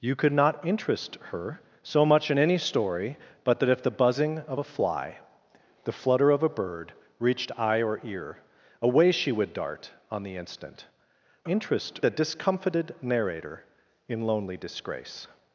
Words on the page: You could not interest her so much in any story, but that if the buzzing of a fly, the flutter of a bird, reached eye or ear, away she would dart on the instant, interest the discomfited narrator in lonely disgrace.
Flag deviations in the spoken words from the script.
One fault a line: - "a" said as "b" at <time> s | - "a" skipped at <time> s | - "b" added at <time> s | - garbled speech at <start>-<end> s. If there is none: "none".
none